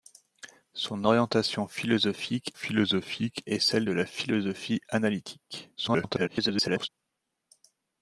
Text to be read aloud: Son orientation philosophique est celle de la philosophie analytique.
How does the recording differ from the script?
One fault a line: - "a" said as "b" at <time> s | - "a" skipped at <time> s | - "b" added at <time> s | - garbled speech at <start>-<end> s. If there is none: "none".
- "philosophique" added at 2.5 s
- garbled speech at 5.8-6.9 s